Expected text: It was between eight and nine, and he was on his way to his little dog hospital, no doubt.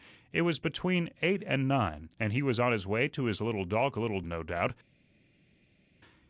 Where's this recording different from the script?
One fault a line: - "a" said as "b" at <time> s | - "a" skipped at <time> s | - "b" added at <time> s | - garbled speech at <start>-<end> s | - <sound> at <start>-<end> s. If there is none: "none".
- "hospital" said as "little" at 3.9 s